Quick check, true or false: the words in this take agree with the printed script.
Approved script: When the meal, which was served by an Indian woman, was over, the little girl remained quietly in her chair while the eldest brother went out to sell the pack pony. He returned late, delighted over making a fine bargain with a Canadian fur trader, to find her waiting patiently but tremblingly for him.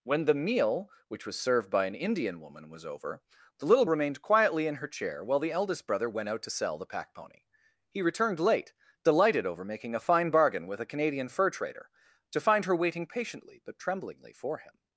false